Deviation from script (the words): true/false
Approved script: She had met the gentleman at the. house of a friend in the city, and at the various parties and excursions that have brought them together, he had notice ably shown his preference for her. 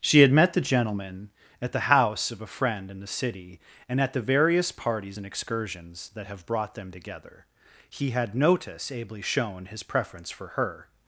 false